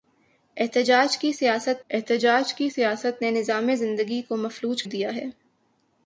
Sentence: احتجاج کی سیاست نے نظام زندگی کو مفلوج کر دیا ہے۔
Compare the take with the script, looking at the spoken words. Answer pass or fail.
fail